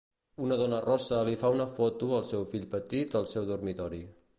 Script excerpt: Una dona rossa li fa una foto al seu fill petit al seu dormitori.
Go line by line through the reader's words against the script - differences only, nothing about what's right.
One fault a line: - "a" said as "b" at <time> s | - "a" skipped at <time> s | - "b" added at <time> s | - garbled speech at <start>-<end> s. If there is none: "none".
none